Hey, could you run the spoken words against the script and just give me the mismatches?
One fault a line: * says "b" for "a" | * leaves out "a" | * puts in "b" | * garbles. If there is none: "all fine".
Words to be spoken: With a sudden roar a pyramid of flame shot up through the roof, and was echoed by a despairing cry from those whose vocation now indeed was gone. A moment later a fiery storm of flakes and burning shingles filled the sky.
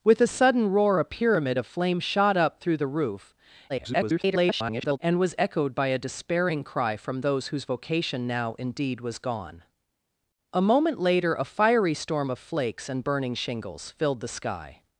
* garbles